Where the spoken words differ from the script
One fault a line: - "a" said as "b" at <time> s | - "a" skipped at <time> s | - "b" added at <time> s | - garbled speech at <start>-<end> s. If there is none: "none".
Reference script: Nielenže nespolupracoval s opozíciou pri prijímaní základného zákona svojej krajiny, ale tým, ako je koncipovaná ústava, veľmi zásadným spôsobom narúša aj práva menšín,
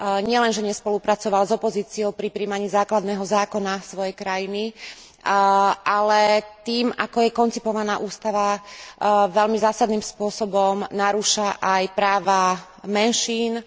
none